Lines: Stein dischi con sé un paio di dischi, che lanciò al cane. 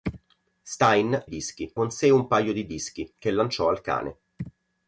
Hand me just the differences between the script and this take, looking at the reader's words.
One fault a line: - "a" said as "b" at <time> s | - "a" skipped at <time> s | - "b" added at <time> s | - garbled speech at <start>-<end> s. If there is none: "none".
none